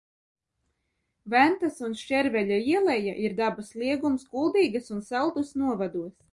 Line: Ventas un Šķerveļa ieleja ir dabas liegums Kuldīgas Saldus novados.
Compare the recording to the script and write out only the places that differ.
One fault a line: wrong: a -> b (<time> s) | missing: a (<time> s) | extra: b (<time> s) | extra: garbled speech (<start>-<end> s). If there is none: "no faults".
extra: un (5.0 s)